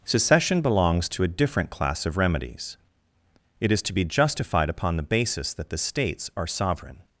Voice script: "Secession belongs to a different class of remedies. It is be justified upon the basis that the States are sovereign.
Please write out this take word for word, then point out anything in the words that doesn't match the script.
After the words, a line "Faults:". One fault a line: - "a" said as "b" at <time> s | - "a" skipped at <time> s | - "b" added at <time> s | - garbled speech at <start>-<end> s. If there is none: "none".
"Secession belongs to a different class of remedies. It is to be justified upon the basis that the States are sovereign.
Faults:
- "to" added at 3.8 s